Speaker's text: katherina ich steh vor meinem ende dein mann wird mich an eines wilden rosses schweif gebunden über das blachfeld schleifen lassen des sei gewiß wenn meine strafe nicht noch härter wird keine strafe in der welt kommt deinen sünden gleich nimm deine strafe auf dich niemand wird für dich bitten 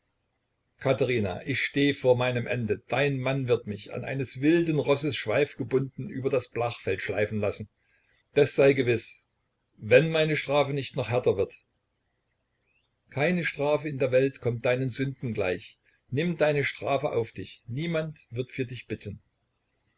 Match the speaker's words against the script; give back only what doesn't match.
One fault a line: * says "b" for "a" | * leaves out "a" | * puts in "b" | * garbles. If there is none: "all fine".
all fine